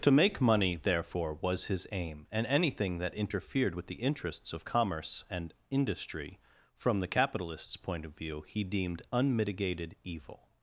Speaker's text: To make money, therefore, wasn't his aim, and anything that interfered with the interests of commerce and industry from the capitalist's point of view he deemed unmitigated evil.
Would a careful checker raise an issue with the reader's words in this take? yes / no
yes